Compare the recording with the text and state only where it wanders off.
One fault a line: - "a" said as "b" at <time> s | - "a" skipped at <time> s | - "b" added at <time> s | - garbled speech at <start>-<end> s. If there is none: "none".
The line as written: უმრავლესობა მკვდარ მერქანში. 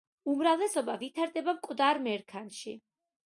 - "ვითარდება" added at 1.0 s